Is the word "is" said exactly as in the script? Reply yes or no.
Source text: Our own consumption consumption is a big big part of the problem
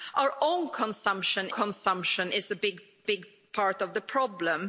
yes